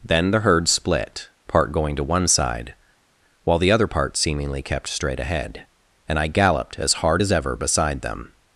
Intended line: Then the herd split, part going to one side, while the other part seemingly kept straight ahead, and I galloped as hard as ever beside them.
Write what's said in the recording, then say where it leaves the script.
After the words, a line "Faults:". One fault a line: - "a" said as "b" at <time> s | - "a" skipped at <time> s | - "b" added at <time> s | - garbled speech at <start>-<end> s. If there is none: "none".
Then the herd split, part going to one side, while the other part seemingly kept straight ahead, and I galloped as hard as ever beside them.
Faults:
none